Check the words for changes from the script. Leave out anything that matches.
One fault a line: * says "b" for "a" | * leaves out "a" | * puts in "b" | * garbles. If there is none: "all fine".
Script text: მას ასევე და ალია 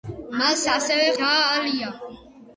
all fine